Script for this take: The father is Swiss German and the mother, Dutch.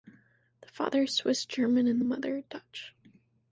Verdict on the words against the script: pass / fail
pass